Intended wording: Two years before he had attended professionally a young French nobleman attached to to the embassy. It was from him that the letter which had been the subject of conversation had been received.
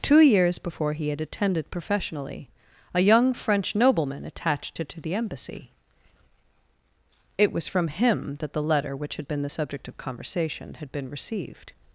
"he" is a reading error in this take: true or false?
false